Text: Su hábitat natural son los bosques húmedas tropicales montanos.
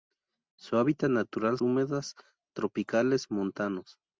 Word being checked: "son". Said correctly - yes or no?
no